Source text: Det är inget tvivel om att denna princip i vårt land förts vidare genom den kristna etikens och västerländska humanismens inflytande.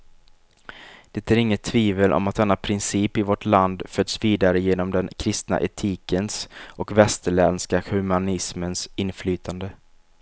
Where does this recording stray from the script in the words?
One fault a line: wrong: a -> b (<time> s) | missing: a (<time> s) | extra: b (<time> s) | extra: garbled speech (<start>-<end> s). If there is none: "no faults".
no faults